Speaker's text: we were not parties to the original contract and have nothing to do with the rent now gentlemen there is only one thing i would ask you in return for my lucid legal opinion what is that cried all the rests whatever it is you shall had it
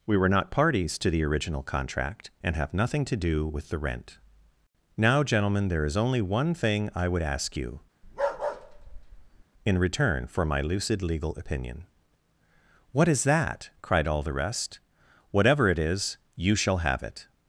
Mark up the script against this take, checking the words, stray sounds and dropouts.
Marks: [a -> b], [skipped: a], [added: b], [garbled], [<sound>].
we were not parties to the original contract and have nothing to do with the rent now gentlemen there is only one thing i would ask you [bark] in return for my lucid legal opinion what is that cried all the [rests -> rest] whatever it is you shall [had -> have] it